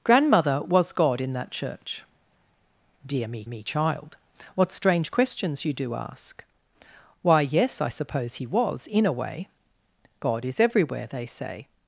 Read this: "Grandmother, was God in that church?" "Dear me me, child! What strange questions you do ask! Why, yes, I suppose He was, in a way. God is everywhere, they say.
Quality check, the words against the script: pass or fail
pass